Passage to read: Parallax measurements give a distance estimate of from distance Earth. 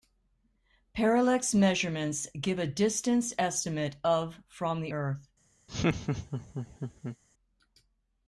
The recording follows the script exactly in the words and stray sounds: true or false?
false